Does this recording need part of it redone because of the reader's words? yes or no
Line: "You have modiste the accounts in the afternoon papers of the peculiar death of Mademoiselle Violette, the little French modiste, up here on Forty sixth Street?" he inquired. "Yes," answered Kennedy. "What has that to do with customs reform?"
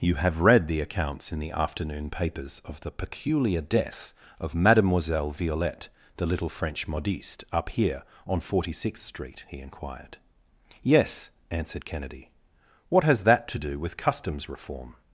yes